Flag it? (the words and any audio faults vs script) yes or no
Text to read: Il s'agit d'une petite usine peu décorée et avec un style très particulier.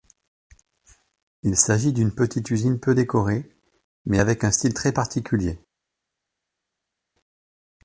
yes